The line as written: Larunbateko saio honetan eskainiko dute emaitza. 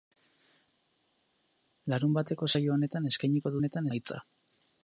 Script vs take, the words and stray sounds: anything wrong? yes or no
yes